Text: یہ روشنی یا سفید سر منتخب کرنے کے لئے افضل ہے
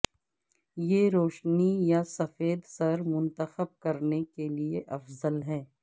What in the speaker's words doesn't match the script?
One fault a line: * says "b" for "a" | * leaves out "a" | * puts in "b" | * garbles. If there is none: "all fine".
all fine